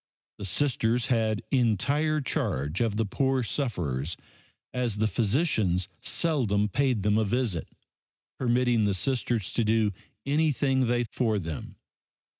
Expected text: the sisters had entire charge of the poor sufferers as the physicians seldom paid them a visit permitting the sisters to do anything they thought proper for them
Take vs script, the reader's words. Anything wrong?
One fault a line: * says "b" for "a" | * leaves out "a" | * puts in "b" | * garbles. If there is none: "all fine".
* leaves out "thought proper"